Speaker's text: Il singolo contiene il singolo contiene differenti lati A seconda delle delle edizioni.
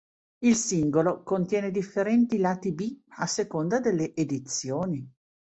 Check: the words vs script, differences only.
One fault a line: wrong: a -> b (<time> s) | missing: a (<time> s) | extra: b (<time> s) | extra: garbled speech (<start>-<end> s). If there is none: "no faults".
missing: il singolo contiene (1.7 s)
extra: B (2.7 s)
missing: delle (4.2 s)